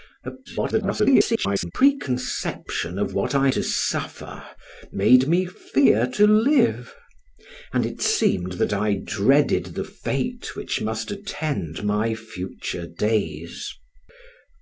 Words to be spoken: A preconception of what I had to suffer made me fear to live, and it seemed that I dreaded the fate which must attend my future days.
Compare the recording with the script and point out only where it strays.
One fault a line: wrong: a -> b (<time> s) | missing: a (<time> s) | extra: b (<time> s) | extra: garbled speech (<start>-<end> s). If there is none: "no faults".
extra: garbled speech (0.4-1.7 s)
missing: had (3.5 s)